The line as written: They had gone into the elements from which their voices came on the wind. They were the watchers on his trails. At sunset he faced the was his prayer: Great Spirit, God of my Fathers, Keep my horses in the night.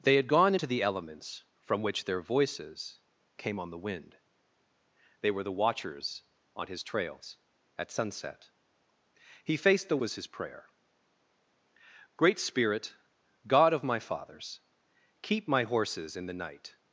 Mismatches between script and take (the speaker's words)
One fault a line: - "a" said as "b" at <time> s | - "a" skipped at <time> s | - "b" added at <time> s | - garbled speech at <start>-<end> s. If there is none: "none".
none